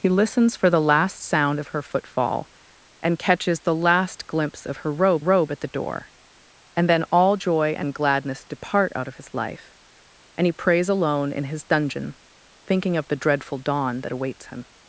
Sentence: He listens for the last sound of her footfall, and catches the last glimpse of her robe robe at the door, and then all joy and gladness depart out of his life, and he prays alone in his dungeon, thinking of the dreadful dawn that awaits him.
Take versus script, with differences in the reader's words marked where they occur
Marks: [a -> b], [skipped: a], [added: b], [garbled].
He listens for the last sound of her footfall, and catches the last glimpse of her robe robe at the door, and then all joy and gladness depart out of his life, and he prays alone in his dungeon, thinking of the dreadful dawn that awaits him.